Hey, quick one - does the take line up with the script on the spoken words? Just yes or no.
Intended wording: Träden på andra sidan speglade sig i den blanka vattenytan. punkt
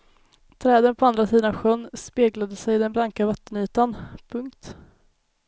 no